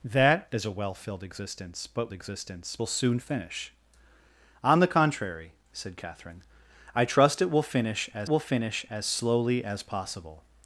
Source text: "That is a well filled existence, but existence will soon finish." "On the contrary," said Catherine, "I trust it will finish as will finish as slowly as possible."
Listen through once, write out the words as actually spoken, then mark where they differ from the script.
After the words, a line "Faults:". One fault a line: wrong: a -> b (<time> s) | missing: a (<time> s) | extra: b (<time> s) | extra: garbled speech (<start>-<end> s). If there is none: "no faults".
"That is a well filled existence, but existence will soon finish." "On the contrary," said Catherine, "I trust it will finish as will finish as slowly as possible."
Faults:
no faults